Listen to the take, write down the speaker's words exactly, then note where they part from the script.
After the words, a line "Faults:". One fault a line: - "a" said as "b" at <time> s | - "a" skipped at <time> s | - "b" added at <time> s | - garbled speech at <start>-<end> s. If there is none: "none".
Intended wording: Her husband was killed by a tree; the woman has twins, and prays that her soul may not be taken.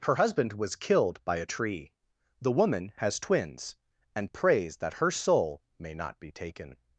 Her husband was killed by a tree; the woman has twins, and prays that her soul may not be taken.
Faults:
none